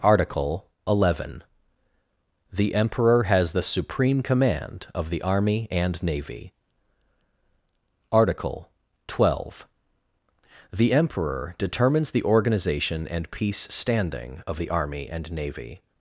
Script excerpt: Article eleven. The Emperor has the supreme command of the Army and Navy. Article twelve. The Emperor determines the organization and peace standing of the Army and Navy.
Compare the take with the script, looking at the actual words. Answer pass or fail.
pass